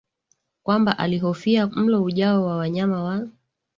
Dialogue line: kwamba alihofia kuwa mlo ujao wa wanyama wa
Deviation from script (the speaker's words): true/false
true